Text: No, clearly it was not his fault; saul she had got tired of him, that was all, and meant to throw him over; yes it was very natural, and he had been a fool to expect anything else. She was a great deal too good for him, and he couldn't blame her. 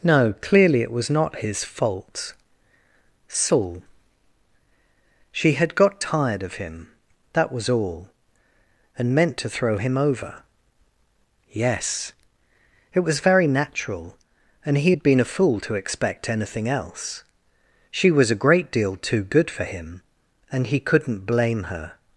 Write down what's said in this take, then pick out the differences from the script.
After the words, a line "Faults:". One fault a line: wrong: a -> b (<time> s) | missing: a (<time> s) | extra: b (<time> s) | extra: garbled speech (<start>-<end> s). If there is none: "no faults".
No, clearly it was not his fault; saul she had got tired of him, that was all, and meant to throw him over; yes it was very natural, and he had been a fool to expect anything else. She was a great deal too good for him, and he couldn't blame her.
Faults:
no faults